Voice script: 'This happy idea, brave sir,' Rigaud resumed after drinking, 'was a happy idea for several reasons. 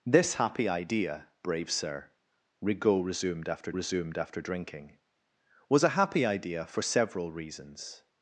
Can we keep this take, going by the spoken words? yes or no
no